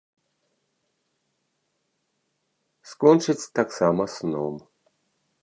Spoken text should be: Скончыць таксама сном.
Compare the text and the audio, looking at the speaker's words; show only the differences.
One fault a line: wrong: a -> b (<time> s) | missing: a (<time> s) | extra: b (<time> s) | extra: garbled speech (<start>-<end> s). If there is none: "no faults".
no faults